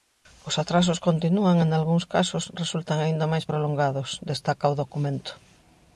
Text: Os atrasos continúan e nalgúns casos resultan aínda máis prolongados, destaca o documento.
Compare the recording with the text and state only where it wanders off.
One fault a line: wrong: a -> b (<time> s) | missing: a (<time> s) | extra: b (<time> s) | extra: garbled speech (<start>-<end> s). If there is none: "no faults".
no faults